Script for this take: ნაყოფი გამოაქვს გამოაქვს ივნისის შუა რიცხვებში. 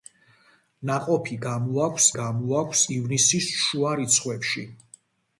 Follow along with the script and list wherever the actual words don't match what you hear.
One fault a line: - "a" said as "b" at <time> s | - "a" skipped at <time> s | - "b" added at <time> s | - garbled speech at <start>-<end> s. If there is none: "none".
none